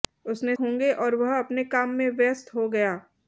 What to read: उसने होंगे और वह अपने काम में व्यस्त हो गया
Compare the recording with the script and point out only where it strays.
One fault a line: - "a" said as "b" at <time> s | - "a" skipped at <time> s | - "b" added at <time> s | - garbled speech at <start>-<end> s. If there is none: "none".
none